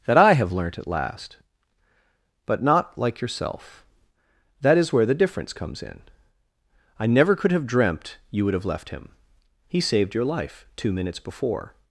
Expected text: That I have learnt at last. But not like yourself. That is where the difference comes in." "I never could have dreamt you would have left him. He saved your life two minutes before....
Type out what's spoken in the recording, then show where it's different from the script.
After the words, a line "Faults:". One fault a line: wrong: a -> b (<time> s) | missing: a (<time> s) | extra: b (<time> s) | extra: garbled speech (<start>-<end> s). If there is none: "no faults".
That I have learnt at last. But not like yourself. That is where the difference comes in." "I never could have dreamt you would have left him. He saved your life two minutes before....
Faults:
no faults